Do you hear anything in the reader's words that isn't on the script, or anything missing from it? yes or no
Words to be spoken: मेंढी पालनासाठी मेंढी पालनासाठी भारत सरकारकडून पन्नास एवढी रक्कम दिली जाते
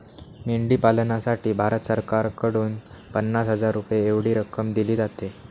yes